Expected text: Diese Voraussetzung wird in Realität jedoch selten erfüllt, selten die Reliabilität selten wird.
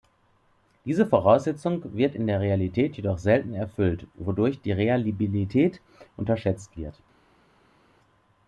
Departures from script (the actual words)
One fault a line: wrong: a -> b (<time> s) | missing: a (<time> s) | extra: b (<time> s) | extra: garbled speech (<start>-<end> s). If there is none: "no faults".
extra: der (2.3 s)
wrong: selten -> wodurch (4.1 s)
wrong: selten -> unterschätzt (6.2 s)